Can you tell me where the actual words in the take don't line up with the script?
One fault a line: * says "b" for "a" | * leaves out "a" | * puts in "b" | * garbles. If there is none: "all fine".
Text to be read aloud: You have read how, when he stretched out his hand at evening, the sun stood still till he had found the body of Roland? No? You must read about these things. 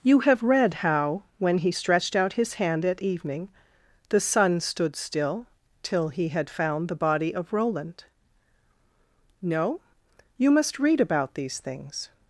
all fine